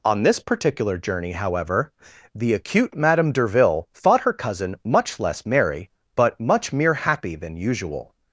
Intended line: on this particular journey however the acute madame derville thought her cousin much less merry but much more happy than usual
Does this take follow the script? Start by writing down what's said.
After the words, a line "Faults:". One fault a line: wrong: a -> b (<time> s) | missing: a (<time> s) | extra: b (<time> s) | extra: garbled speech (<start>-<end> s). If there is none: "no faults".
on this particular journey however the acute madame derville thought her cousin much less merry but much mere happy than usual
Faults:
wrong: more -> mere (6.7 s)